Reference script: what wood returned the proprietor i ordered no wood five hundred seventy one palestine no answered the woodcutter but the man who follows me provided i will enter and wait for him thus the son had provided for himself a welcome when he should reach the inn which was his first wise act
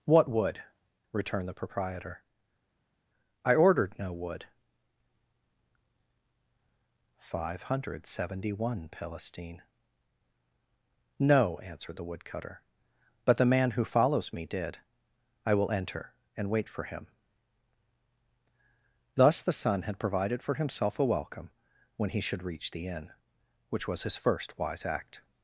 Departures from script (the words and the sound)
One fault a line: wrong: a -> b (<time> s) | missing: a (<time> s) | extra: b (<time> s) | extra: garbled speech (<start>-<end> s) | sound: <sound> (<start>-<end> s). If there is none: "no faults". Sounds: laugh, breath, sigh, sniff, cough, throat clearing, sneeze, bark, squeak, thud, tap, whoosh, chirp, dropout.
wrong: provided -> did (14.5 s)